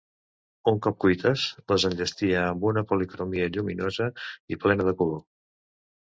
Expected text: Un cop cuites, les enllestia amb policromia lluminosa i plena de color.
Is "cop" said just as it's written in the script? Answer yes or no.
yes